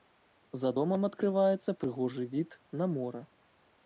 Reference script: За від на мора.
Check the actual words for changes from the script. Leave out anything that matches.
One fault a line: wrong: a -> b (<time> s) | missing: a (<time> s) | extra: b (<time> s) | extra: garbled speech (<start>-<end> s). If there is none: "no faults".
extra: домам адкрываецца прыгожы (0.8 s)